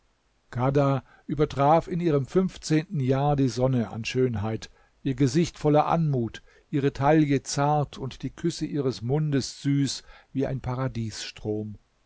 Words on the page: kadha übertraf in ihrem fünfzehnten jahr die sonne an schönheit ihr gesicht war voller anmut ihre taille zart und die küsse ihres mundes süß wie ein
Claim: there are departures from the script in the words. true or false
true